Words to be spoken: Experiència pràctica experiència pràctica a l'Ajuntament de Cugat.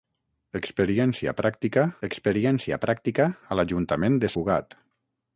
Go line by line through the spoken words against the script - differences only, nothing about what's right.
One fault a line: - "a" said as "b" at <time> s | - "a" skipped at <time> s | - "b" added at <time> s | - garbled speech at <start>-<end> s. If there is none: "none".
none